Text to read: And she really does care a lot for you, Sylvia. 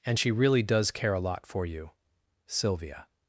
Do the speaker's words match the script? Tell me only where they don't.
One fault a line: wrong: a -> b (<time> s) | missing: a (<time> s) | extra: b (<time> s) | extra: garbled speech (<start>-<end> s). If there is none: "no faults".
no faults